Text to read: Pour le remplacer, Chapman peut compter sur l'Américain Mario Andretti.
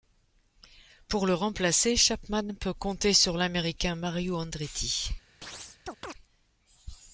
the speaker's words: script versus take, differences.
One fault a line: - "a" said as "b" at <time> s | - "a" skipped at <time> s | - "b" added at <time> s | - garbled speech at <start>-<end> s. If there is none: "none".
none